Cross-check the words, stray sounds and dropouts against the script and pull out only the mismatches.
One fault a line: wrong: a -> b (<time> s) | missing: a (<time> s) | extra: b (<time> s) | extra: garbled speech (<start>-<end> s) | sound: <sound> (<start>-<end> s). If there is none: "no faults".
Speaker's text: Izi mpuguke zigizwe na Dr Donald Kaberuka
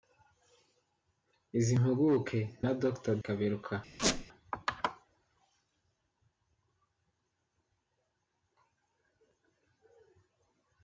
missing: zigizwe (2.4 s)
missing: Donald (3.1 s)
sound: squeak (4.0-4.3 s)